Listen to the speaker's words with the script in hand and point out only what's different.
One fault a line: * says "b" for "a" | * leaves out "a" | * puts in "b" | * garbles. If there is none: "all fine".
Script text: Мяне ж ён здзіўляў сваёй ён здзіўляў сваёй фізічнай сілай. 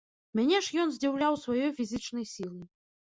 * leaves out "ён здзіўляў сваёй"